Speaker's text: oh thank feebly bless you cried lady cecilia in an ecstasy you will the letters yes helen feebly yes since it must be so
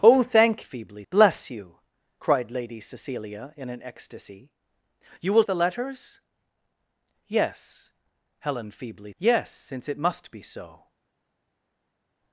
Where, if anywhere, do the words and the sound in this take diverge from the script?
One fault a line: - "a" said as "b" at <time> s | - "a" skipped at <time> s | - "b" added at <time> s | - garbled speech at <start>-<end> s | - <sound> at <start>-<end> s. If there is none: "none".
none